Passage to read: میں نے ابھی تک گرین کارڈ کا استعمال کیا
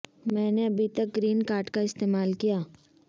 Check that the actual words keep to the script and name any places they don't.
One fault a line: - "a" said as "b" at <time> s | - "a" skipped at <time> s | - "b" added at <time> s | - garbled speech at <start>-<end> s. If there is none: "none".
none